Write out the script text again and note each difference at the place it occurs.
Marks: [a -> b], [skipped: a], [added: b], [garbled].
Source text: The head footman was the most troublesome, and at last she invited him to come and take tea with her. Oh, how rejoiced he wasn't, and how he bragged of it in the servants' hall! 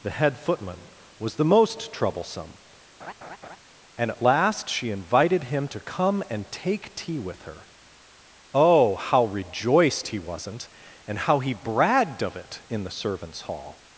The head footman was the most troublesome, and at last she invited him to come and take tea with her. Oh, how rejoiced he wasn't, and how he bragged of it in the servants' hall!